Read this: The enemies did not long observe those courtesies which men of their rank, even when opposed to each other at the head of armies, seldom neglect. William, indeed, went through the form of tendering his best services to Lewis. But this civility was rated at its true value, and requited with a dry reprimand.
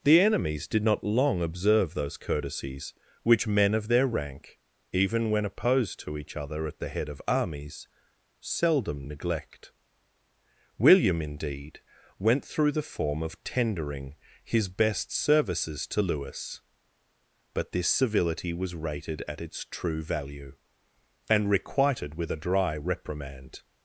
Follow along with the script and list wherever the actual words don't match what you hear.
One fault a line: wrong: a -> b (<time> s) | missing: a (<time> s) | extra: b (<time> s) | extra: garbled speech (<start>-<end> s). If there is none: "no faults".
no faults